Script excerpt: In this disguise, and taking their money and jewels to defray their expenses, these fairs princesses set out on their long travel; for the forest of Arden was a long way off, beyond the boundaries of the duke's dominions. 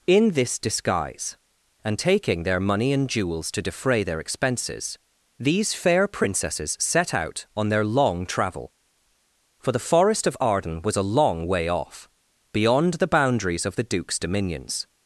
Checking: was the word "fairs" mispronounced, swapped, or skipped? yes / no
yes